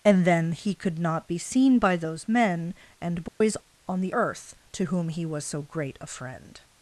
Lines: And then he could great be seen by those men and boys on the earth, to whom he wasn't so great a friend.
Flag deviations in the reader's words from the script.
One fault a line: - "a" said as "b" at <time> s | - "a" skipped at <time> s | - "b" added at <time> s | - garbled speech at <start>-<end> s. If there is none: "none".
- "great" said as "not" at 1.0 s
- "wasn't" said as "was" at 5.3 s